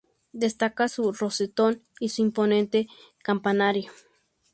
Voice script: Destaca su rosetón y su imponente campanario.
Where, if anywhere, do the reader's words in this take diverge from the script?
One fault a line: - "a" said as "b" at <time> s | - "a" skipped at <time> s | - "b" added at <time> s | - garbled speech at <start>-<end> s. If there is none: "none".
none